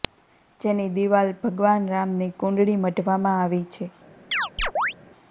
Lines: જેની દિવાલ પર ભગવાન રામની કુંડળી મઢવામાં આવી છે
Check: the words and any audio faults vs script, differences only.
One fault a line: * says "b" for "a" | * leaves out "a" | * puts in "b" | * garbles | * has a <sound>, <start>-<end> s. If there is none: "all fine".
* leaves out "પર"
* has a chirp, 4.3-4.9 s